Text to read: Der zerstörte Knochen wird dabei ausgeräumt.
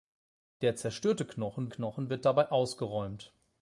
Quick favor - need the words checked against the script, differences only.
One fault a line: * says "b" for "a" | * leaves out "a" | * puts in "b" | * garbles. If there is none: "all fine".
* puts in "Knochen"